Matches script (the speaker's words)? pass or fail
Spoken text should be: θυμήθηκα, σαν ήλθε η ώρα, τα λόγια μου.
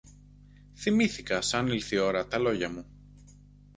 pass